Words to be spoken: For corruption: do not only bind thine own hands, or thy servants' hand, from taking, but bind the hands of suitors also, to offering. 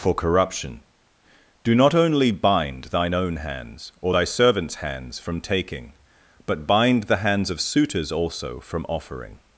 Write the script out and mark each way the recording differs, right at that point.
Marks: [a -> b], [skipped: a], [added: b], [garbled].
For corruption: do not only bind thine own hands, or thy servants' [hand, -> hands] from taking, but bind the hands of suitors also, [to -> from] offering.